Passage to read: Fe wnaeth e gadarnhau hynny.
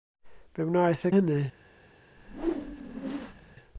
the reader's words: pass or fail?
fail